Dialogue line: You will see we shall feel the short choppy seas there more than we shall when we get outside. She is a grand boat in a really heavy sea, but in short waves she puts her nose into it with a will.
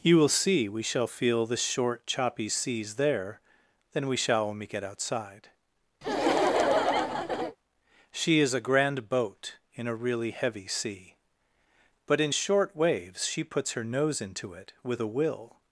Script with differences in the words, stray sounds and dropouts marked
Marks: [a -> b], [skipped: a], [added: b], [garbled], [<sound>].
You will see we shall feel the short choppy seas there [skipped: more] than we shall when we get outside. [laugh] She is a grand boat in a really heavy sea, but in short waves she puts her nose into it with a will.